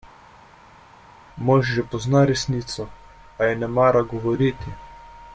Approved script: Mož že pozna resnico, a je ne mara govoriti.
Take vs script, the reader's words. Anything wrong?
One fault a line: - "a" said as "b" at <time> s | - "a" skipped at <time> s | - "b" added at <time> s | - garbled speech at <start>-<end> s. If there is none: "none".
none